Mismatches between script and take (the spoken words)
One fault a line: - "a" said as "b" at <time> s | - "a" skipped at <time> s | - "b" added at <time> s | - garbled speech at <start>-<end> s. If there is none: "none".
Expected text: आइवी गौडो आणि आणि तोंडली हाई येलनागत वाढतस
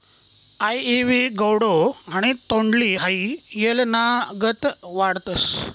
- "आणि" skipped at 2.3 s